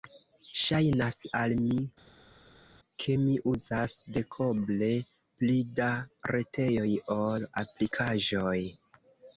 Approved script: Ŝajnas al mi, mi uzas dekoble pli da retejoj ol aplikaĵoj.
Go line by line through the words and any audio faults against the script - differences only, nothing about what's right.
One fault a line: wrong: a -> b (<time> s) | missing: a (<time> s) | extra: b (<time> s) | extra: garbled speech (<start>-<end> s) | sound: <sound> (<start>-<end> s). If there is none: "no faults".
extra: ke (3.0 s)